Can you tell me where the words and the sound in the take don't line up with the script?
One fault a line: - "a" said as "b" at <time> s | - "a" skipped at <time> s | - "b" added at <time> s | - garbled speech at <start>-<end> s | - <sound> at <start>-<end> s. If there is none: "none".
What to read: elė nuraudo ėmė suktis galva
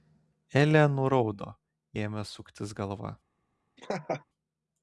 - laugh at 3.8-4.2 s